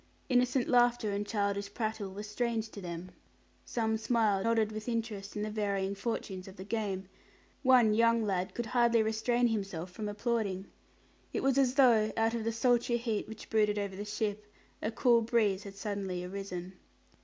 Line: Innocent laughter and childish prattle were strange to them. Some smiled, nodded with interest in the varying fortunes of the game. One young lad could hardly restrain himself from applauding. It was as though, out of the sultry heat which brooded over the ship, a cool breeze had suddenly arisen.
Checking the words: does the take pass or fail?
pass